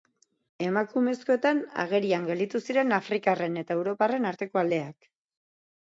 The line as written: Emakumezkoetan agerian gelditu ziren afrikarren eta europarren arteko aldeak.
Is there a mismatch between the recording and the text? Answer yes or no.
no